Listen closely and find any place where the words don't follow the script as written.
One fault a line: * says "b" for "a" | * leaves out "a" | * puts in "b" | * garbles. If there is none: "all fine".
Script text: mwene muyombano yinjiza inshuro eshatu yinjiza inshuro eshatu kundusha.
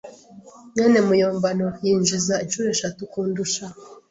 * leaves out "yinjiza inshuro eshatu"